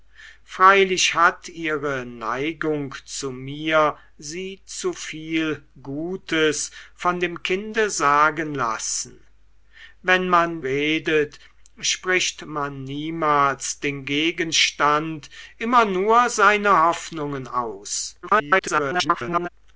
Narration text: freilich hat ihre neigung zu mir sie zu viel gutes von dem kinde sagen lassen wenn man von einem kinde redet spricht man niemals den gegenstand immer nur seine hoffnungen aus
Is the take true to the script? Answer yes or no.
no